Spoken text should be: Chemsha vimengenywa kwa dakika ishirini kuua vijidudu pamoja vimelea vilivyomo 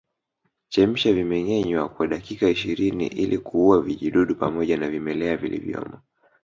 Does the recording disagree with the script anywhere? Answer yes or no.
yes